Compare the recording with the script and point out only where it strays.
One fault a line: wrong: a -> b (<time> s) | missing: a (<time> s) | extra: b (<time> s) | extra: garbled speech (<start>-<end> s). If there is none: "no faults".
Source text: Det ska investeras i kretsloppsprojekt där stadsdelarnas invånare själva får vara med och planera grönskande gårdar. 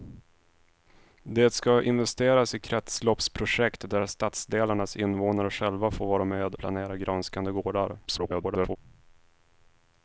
missing: och (6.5 s)
extra: garbled speech (8.1-8.8 s)